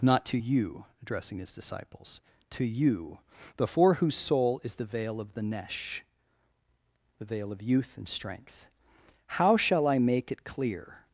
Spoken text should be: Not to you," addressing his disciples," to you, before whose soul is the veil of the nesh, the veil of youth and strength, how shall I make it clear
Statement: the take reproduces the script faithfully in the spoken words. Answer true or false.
true